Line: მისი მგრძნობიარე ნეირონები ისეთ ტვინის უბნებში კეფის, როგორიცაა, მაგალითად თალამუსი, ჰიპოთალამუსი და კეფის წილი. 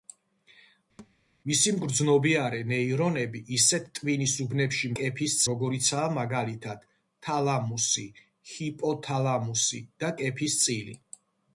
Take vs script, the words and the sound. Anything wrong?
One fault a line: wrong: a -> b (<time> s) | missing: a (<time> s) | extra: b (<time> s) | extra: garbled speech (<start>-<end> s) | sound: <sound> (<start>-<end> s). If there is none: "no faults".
sound: thud (1.0-1.2 s)